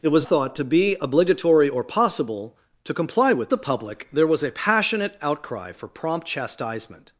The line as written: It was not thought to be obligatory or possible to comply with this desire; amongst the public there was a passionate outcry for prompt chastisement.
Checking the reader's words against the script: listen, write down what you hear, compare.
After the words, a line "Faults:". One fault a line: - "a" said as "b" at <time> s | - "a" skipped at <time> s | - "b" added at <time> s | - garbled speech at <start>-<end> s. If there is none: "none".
It was thought to be obligatory or possible to comply with the public there was a passionate outcry for prompt chastisement.
Faults:
- "not" skipped at 0.3 s
- "this desire amongst" skipped at 3.5 s